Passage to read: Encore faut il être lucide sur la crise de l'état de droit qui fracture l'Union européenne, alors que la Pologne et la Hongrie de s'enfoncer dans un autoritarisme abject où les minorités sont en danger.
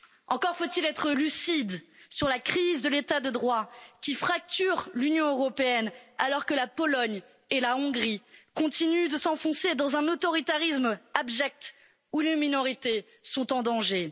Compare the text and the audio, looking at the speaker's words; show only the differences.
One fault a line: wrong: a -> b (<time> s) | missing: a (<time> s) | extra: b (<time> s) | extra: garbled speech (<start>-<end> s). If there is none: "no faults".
extra: continuent (8.5 s)